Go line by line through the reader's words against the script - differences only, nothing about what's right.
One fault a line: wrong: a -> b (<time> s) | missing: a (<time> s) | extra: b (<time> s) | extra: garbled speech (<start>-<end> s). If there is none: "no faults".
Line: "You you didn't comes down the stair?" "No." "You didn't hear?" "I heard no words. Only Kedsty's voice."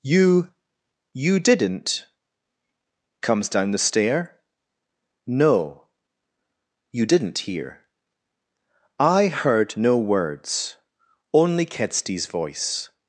no faults